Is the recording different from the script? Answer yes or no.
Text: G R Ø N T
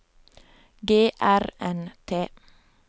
yes